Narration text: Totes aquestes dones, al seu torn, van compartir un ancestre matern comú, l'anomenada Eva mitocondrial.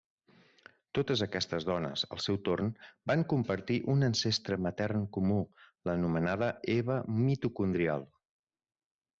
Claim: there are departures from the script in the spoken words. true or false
false